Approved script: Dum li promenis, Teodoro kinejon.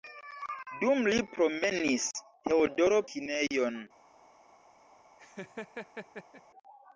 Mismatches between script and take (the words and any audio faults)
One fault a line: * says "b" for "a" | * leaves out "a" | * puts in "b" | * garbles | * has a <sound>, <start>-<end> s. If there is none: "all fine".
* has a laugh, 5.2-6.4 s